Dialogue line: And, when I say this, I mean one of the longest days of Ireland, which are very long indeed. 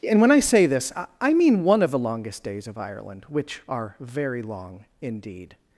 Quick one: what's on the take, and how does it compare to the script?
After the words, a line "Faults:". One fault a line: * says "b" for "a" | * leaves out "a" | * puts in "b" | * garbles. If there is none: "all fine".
And, when I say this, I mean one of the longest days of Ireland, which are very long indeed.
Faults:
all fine